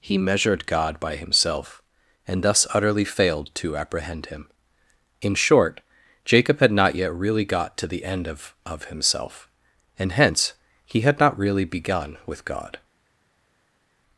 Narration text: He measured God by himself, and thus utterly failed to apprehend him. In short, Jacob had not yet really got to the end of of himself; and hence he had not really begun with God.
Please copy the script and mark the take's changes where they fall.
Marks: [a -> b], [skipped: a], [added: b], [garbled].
He measured God by himself, and thus utterly failed to apprehend him. In short, Jacob had not yet really got to the end of of himself; and hence he had not really begun with God.